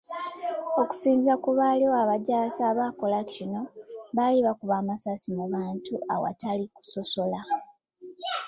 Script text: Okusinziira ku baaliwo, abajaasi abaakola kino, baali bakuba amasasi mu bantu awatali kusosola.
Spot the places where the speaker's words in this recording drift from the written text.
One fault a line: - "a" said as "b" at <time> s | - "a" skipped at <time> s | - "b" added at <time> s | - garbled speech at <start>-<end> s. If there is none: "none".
none